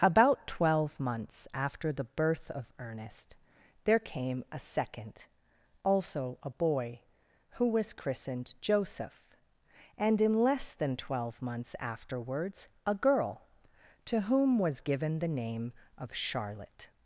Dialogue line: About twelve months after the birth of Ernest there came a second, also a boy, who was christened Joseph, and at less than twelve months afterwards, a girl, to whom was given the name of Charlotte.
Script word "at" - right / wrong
wrong